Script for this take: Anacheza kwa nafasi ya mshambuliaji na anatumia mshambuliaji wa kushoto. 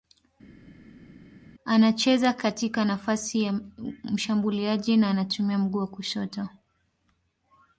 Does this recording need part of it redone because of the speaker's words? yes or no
yes